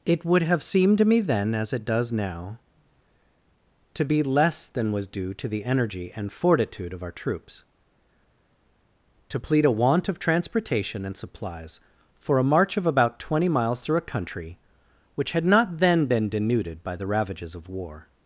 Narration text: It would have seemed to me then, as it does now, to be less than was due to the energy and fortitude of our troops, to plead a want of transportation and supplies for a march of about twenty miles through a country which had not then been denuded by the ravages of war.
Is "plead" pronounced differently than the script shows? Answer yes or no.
no